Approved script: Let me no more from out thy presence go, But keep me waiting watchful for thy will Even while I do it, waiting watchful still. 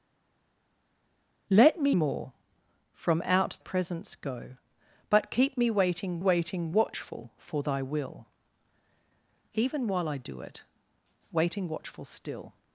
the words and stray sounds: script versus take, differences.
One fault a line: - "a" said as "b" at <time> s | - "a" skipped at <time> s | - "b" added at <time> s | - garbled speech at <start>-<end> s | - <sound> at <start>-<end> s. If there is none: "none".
- "no" skipped at 2.0 s
- "thy" skipped at 3.6 s
- "waiting" added at 6.2 s